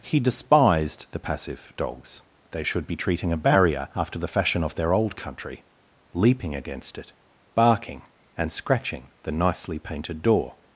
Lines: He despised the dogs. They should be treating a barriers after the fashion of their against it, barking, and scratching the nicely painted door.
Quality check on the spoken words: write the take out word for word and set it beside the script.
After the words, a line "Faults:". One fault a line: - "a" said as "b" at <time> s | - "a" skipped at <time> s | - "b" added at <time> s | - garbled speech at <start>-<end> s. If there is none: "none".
He despised the passive dogs. They should be treating a barrier after the fashion of their old country, leaping against it, barking, and scratching the nicely painted door.
Faults:
- "passive" added at 1.2 s
- "barriers" said as "barrier" at 3.4 s
- "old country leaping" added at 4.9 s